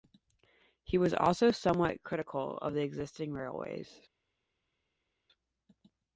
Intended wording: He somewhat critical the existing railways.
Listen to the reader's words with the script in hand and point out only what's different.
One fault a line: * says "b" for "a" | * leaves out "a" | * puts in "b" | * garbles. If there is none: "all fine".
* puts in "was also"
* puts in "of"